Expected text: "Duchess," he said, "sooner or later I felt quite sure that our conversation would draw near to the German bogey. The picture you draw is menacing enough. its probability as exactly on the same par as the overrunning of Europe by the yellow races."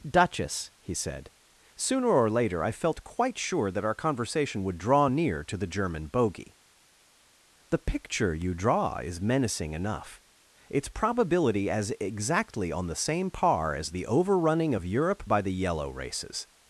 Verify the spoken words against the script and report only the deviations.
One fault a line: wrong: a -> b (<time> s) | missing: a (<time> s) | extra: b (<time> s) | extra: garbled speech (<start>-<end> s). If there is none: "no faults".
no faults